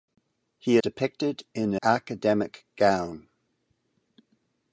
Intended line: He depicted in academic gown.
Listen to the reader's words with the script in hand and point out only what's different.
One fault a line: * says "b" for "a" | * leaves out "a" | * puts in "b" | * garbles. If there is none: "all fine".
all fine